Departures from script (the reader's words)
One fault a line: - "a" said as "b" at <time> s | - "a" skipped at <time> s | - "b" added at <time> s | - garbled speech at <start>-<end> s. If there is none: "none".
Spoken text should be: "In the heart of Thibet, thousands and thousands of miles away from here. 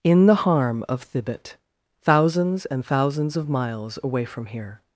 - "heart" said as "harm" at 0.3 s